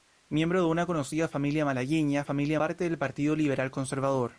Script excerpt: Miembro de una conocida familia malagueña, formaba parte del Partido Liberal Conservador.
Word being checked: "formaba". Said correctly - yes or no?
no